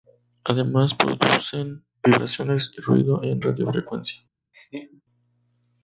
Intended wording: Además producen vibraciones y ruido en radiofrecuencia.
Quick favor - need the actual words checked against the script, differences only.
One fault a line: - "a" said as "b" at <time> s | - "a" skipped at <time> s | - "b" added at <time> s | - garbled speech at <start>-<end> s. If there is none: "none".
none